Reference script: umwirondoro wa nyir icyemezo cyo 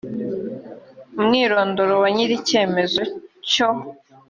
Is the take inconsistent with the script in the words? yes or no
no